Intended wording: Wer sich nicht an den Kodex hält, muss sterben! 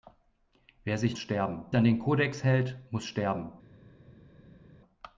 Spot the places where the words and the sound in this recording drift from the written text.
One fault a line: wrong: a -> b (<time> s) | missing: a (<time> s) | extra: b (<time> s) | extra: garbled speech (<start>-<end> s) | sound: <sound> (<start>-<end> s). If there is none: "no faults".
wrong: nicht -> sterben (1.2 s)